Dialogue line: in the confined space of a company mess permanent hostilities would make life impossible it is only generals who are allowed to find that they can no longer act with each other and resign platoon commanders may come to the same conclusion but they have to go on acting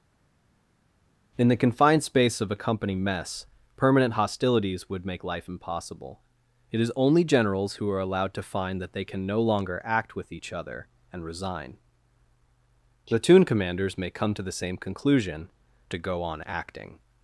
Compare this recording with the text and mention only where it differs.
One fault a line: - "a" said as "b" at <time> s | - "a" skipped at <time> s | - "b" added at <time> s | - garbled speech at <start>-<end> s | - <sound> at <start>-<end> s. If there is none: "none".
- "but they have" skipped at 15.5 s